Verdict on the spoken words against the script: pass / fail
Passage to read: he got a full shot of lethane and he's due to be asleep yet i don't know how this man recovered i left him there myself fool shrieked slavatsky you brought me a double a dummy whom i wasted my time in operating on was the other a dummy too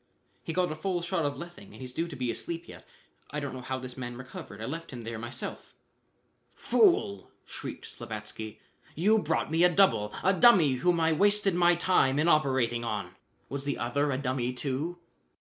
pass